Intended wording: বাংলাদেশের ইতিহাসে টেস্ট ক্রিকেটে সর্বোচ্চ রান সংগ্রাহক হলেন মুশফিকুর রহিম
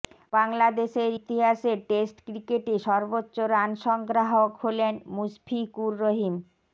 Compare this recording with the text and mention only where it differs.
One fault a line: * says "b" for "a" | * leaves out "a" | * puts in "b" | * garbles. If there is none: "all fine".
all fine